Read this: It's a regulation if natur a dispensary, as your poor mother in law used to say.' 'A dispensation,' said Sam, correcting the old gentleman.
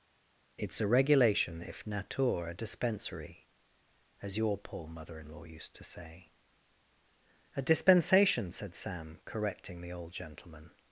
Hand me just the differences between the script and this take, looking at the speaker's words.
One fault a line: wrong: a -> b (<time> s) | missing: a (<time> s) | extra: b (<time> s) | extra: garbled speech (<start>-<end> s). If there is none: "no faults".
no faults